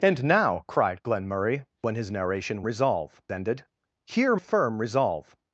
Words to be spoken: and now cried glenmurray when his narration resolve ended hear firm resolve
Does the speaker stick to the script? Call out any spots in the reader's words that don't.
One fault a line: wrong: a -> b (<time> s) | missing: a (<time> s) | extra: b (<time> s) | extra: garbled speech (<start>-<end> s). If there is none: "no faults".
no faults